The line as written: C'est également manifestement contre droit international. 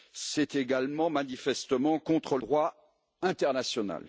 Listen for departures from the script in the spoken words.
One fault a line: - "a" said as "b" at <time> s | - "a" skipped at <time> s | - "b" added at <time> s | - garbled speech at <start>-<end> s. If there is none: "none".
none